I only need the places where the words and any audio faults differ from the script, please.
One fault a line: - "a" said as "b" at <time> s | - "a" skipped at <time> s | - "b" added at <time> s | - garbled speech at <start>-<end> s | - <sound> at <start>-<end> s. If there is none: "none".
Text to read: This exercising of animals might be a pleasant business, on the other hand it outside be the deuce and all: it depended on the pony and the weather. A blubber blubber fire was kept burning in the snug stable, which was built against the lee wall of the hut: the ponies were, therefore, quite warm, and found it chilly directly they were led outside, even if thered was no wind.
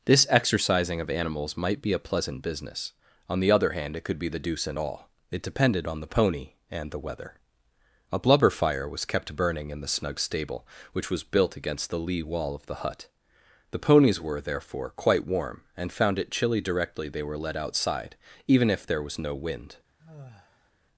- "outside" said as "could" at 4.0 s
- "blubber" skipped at 8.5 s
- "thered" said as "there" at 18.9 s
- sigh at 20.0-20.7 s